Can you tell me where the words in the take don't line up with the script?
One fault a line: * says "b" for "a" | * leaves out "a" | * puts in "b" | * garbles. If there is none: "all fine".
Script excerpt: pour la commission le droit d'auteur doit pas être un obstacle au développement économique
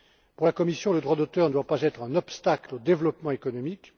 all fine